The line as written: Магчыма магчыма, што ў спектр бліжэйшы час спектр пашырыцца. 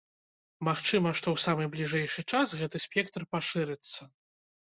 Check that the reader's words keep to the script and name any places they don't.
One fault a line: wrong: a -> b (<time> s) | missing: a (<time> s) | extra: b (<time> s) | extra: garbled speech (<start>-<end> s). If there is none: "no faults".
missing: магчыма (1.1 s)
wrong: спектр -> самы (1.4 s)
extra: гэты (2.6 s)